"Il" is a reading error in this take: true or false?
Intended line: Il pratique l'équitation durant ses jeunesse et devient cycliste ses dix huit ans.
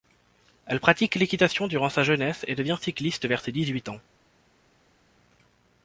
true